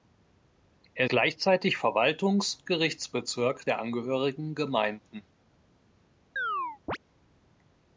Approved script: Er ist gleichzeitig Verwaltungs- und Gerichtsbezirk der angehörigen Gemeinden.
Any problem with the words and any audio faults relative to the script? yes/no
yes